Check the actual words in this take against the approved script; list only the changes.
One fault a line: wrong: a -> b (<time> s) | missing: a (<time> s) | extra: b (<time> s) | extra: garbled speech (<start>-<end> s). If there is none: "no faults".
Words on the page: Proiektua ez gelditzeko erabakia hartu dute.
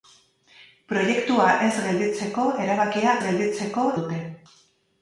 wrong: hartu -> gelditzeko (3.3 s)